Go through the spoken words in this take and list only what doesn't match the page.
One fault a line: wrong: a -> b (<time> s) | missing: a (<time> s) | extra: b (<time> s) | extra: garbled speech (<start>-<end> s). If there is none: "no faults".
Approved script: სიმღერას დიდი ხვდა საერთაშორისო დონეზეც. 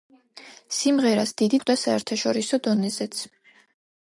no faults